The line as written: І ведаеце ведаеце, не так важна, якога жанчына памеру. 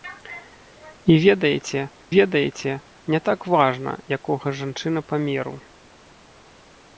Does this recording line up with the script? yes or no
yes